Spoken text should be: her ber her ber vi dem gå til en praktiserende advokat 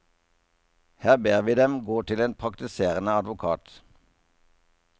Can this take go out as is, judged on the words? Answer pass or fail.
fail